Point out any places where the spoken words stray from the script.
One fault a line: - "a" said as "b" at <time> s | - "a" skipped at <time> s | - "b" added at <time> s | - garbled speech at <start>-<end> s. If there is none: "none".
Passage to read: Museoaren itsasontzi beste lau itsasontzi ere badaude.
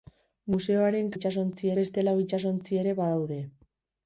none